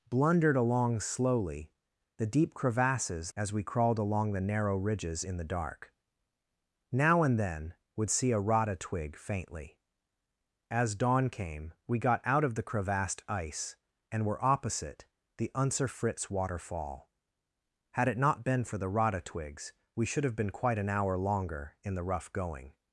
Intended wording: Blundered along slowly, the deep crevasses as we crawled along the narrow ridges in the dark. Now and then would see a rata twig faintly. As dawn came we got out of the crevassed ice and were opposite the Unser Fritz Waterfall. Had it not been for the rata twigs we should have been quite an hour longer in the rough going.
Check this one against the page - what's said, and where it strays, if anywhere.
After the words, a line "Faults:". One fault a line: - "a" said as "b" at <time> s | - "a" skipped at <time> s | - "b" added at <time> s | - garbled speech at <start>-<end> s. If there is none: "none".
Blundered along slowly, the deep crevasses as we crawled along the narrow ridges in the dark. Now and then would see a rata twig faintly. As dawn came we got out of the crevassed ice and were opposite the Unser Fritz Waterfall. Had it not been for the rata twigs we should have been quite an hour longer in the rough going.
Faults:
none